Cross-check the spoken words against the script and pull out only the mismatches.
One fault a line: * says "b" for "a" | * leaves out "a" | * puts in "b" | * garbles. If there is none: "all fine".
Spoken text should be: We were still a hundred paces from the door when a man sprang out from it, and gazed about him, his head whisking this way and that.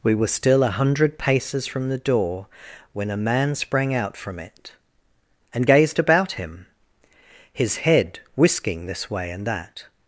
all fine